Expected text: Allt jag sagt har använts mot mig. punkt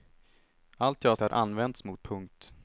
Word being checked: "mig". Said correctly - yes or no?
no